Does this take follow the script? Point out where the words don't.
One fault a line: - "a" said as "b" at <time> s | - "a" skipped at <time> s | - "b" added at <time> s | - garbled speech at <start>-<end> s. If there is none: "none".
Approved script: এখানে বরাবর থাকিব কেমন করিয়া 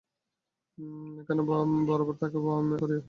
- "কেমন" skipped at 2.5 s